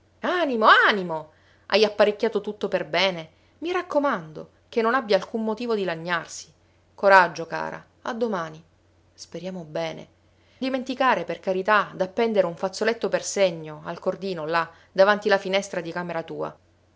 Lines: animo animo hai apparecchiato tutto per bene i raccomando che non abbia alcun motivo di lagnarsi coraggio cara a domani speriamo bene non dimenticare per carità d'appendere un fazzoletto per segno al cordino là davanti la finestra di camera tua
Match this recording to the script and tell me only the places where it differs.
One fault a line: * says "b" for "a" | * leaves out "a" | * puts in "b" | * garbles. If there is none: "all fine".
* leaves out "non"